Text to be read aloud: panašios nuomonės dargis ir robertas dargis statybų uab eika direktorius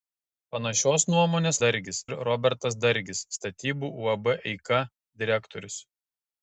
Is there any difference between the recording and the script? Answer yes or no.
no